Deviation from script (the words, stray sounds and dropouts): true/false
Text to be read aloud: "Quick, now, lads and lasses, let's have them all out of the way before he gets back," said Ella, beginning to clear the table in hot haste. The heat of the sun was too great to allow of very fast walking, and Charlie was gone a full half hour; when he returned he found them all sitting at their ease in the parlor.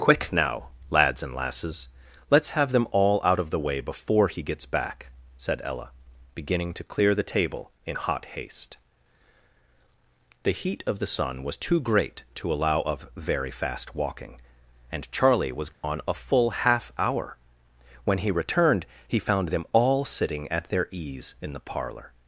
true